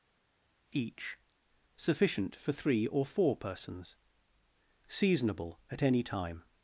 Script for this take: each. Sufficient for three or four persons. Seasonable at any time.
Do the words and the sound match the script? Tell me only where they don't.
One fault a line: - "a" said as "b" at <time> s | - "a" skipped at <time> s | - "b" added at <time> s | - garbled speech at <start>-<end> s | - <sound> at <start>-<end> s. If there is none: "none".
none